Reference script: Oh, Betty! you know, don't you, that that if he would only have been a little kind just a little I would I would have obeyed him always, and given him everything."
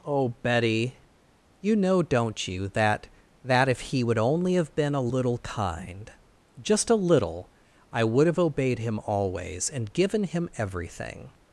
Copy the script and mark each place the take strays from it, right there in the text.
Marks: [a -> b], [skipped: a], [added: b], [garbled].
Oh, Betty! you know, don't you, that that if he would only have been a little kind just a little I would [skipped: I would] have obeyed him always, and given him everything."